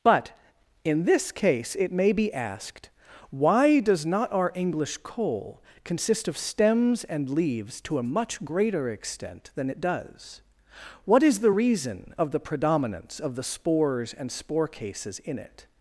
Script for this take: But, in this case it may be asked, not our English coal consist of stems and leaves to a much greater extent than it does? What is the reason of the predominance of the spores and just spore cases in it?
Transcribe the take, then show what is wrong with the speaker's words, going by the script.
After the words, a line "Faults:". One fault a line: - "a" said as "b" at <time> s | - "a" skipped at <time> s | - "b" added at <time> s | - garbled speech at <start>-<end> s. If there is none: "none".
But, in this case it may be asked, why does not our English coal consist of stems and leaves to a much greater extent than it does? What is the reason of the predominance of the spores and spore cases in it?
Faults:
- "why does" added at 3.3 s
- "just" skipped at 14.3 s